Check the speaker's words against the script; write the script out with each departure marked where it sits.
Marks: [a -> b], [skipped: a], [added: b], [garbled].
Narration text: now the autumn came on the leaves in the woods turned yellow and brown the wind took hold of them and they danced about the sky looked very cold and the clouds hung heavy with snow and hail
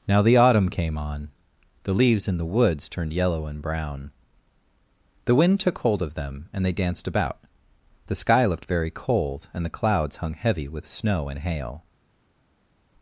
now the autumn came on the leaves in the woods turned yellow and brown the wind took hold of them and they danced about the sky looked very cold and the clouds hung heavy with snow and hail